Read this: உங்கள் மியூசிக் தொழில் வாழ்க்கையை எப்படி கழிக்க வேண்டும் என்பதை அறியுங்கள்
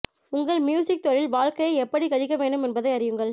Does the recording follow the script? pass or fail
pass